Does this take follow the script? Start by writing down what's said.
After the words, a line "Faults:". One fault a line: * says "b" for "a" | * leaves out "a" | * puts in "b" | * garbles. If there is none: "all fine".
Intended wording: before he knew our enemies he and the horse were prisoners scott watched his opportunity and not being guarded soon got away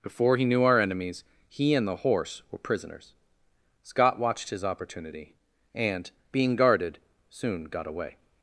before he knew our enemies he and the horse were prisoners scott watched his opportunity and being guarded soon got away
Faults:
* leaves out "not"